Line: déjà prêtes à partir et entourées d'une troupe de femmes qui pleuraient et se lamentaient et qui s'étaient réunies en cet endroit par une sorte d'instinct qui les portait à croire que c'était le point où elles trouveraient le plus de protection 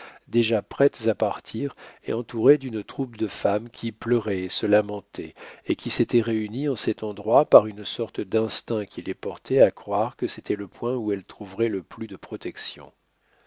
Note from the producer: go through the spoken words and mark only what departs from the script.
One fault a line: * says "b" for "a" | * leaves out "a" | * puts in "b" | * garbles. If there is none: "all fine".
all fine